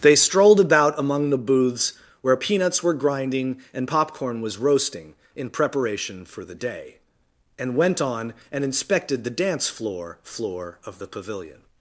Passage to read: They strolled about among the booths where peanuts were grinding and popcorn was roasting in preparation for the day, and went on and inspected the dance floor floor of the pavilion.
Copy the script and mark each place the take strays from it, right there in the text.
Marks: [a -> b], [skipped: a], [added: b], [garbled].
They strolled about among the booths where peanuts were grinding and popcorn was roasting in preparation for the day, and went on and inspected the dance floor floor of the pavilion.